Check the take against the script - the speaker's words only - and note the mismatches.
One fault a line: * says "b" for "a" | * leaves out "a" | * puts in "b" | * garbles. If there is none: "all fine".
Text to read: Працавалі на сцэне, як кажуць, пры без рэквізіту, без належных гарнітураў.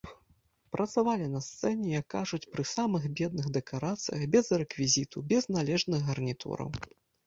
* puts in "самых бедных дэкарацыях"